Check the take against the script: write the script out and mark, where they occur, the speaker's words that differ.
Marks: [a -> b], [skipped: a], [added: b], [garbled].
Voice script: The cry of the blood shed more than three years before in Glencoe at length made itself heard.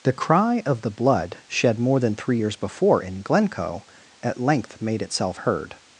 The cry of the blood shed more than three years before in Glencoe at length made itself heard.